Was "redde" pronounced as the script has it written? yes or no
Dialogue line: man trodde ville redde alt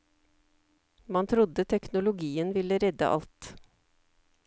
yes